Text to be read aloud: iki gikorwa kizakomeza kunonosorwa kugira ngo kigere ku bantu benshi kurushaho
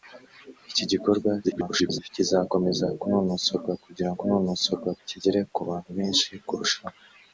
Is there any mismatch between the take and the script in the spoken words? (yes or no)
yes